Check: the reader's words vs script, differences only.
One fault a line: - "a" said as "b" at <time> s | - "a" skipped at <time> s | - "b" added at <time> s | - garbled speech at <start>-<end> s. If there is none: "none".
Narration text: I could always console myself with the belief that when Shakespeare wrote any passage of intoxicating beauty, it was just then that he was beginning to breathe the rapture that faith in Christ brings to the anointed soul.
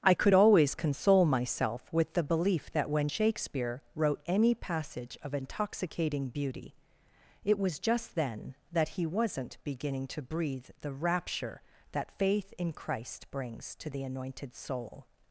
- "was" said as "wasn't" at 9.1 s